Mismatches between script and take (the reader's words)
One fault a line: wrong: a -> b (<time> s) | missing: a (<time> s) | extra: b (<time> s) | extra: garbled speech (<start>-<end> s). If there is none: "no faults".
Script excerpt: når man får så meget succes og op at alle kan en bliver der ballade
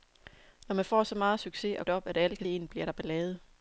no faults